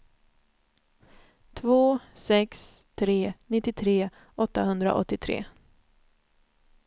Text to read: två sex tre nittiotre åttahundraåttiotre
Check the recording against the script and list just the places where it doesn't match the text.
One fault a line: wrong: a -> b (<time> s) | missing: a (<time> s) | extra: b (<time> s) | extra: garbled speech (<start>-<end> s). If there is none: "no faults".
no faults